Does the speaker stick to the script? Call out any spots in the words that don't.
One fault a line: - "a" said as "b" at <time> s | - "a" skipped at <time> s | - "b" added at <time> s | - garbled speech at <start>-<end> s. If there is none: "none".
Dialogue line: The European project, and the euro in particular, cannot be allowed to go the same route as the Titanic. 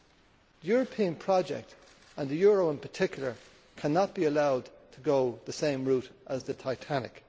none